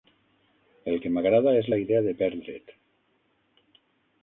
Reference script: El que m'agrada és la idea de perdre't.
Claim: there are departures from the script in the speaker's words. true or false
false